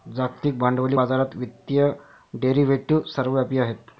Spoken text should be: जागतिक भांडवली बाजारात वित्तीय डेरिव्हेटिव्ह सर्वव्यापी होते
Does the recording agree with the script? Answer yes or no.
no